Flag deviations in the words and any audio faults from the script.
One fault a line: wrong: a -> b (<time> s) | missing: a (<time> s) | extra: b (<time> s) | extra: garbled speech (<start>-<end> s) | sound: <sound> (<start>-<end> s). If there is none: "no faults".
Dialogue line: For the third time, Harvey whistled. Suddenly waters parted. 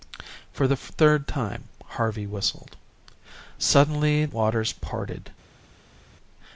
no faults